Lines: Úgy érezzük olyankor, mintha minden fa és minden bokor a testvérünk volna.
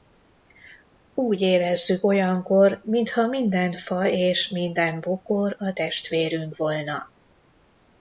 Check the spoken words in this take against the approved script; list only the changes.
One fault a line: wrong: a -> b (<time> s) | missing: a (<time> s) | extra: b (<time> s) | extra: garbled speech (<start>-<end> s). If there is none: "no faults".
no faults